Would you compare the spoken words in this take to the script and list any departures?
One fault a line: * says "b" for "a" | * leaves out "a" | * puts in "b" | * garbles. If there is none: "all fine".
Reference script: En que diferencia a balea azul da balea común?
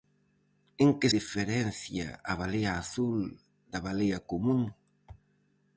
all fine